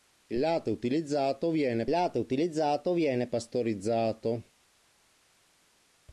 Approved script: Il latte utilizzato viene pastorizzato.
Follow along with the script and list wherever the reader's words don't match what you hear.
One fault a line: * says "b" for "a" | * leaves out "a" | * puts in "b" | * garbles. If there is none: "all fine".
* puts in "latte utilizzato viene"